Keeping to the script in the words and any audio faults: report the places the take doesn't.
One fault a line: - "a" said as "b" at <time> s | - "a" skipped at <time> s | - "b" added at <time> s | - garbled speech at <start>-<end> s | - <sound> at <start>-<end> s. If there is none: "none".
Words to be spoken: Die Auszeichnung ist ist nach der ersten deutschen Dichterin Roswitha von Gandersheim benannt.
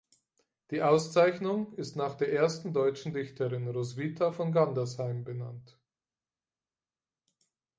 - "ist" skipped at 1.9 s